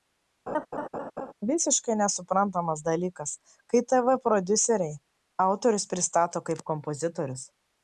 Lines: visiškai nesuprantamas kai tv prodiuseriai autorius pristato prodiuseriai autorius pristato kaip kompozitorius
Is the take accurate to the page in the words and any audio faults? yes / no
no